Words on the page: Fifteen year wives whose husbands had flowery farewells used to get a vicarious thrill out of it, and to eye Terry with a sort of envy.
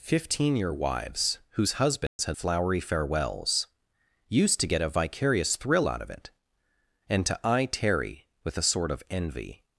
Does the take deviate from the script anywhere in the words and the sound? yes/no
yes